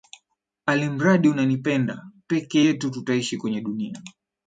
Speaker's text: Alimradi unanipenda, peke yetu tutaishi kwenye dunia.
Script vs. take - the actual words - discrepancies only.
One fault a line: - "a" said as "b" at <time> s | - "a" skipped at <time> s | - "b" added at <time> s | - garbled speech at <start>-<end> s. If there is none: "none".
none